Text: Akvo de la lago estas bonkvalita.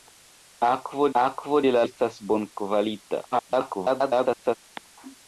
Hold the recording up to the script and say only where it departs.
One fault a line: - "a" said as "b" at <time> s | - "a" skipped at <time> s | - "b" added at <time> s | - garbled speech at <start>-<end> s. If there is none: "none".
- "akvo" added at 1.2 s
- "lago" skipped at 1.8 s
- garbled speech at 3.3-4.6 s